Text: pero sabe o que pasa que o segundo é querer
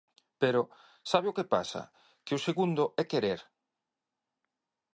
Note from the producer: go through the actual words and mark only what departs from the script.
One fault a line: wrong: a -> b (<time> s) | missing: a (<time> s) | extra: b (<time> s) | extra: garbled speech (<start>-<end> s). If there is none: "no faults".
no faults